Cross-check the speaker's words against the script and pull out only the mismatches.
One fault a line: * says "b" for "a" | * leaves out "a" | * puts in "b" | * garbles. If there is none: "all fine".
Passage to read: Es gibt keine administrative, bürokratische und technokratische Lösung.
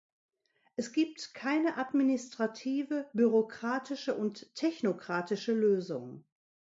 all fine